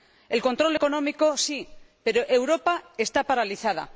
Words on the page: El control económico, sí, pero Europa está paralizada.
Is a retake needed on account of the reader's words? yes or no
no